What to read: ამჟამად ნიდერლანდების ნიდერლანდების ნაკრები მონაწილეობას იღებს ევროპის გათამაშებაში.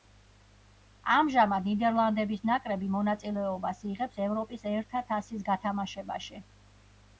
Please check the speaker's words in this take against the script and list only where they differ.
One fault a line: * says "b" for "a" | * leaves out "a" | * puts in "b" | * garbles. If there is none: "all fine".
* leaves out "ნიდერლანდების"
* puts in "ერთა თასის"